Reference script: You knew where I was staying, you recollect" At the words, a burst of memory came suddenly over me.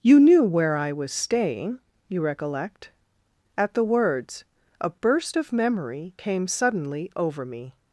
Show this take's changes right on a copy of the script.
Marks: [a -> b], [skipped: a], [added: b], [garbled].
You knew where I was staying, you recollect" At the words, a burst of memory came suddenly over me.